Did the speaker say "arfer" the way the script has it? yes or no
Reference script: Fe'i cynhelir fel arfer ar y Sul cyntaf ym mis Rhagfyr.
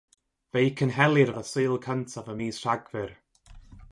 no